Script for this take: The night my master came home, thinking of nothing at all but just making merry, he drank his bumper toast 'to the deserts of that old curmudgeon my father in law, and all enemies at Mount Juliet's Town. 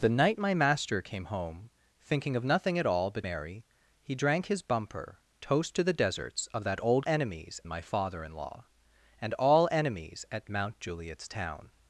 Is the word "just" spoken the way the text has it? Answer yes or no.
no